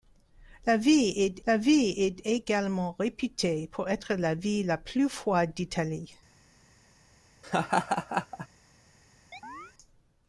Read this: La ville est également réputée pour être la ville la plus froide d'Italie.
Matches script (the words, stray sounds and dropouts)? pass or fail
fail